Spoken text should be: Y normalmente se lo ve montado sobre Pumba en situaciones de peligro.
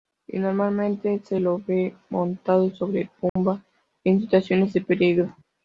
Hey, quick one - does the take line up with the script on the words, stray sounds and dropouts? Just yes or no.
no